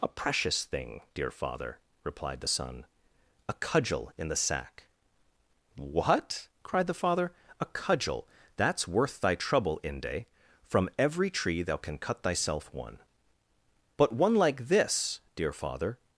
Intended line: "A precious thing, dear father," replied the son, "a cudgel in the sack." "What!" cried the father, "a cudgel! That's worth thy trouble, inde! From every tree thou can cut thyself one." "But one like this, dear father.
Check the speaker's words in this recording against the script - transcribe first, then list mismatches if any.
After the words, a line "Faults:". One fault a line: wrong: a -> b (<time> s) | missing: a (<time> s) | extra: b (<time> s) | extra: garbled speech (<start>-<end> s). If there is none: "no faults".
"A precious thing, dear father," replied the son, "a cudgel in the sack." "What!" cried the father, "a cudgel! That's worth thy trouble, inde! From every tree thou can cut thyself one." "But one like this, dear father.
Faults:
no faults